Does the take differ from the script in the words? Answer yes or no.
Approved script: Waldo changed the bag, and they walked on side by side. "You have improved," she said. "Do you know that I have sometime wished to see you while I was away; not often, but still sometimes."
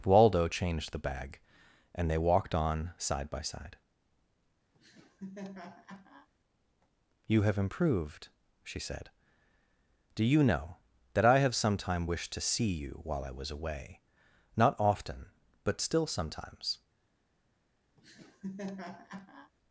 no